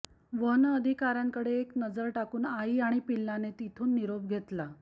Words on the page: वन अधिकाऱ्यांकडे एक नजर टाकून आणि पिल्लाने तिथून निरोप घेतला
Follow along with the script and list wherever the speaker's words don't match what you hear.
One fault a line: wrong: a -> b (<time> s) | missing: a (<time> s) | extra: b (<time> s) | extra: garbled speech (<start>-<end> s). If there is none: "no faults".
extra: आई (2.5 s)